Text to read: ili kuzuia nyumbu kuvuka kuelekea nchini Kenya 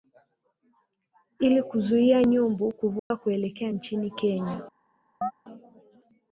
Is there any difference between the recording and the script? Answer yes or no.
no